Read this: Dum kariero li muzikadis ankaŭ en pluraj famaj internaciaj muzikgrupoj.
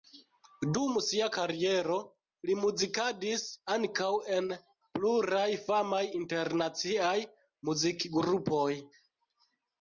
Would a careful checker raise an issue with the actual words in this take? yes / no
yes